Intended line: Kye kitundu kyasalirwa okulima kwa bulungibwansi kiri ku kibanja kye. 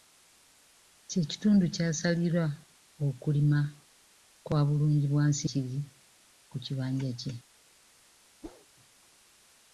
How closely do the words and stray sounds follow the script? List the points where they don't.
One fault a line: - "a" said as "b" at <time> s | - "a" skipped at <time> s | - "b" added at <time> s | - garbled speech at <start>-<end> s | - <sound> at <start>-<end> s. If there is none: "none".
- whoosh at 8.4-8.7 s